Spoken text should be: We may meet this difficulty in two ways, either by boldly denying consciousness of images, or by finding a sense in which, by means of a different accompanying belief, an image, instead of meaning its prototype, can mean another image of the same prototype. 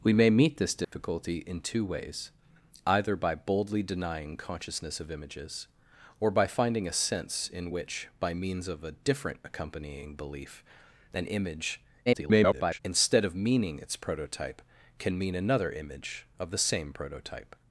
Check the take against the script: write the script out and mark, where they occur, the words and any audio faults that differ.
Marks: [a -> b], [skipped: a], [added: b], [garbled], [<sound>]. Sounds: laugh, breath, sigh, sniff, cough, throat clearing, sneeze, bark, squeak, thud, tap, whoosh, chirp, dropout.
We may meet this difficulty [dropout] in two ways, either by boldly denying consciousness of images, or by finding a sense in which, by means of a different accompanying belief, an image, [garbled] instead of meaning its prototype, can mean another image of the same prototype.